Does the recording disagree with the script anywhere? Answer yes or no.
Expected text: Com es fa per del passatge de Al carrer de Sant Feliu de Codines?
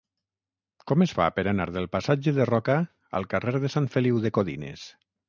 yes